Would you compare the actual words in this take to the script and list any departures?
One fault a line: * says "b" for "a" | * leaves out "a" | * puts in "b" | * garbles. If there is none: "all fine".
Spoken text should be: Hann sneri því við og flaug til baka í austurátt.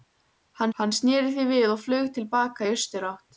* puts in "hann"